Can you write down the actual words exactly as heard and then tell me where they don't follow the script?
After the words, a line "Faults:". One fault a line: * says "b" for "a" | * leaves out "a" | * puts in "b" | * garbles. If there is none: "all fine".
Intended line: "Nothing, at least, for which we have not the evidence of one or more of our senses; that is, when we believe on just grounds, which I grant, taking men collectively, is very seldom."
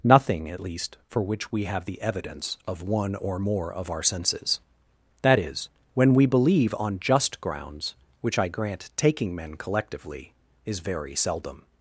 "Nothing, at least, for which we have the evidence of one or more of our senses; that is, when we believe on just grounds, which I grant, taking men collectively, is very seldom."
Faults:
* leaves out "not"